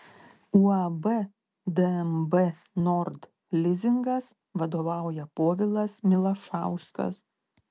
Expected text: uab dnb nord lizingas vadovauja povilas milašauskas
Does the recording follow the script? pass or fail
pass